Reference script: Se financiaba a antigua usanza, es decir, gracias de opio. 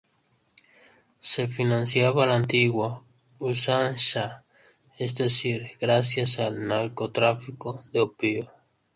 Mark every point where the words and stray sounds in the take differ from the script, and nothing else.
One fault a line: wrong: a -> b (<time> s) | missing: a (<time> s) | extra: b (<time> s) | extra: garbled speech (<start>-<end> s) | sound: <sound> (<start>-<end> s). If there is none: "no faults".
extra: la (2.2 s)
extra: al narcotráfico (6.4 s)